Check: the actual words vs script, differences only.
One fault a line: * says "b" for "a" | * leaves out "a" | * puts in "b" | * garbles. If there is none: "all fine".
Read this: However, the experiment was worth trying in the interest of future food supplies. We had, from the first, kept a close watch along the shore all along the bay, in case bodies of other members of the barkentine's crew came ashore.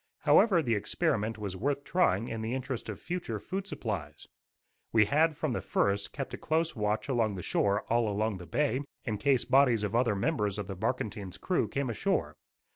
all fine